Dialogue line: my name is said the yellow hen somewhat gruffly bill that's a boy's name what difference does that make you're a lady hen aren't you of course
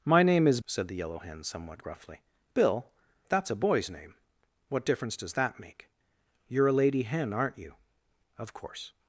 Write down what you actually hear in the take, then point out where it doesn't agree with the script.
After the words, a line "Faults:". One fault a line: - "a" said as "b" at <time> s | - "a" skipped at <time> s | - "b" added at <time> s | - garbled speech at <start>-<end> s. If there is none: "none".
my name is said the yellow hen somewhat gruffly bill that's a boy's name what difference does that make you're a lady hen aren't you of course
Faults:
none